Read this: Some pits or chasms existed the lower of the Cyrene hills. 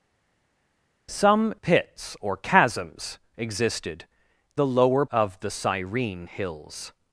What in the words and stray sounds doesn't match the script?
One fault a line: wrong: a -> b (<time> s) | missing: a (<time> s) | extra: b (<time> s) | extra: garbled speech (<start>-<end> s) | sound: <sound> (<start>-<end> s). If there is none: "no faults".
no faults